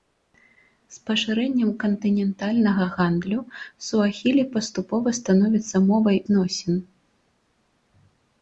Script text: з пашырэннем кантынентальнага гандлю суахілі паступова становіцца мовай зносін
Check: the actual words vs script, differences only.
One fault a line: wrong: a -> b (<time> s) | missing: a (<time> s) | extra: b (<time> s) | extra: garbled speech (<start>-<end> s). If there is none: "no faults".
no faults